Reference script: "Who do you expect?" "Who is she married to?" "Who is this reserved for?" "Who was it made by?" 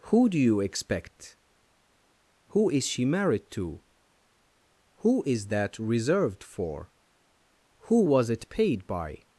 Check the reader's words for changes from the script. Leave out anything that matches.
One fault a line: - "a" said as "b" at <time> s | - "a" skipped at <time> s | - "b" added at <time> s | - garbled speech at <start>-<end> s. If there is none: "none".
- "this" said as "that" at 5.5 s
- "made" said as "paid" at 8.5 s